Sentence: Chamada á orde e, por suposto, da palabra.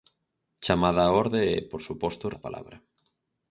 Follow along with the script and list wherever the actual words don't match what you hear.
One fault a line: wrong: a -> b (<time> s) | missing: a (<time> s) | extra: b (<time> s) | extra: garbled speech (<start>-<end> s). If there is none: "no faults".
no faults